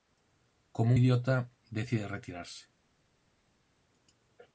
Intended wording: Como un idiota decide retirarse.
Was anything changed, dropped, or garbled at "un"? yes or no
yes